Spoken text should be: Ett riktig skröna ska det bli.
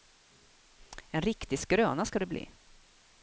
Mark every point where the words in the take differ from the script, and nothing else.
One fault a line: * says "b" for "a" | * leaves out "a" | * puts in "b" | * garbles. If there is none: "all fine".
* says "En" for "Ett"